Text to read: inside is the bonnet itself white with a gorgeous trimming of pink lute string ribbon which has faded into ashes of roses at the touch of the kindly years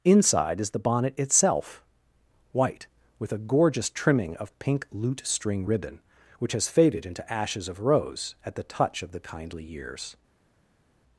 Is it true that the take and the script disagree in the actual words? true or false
true